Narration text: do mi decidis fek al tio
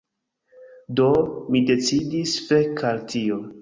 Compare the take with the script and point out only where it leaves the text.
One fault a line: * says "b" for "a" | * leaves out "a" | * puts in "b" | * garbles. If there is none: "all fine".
all fine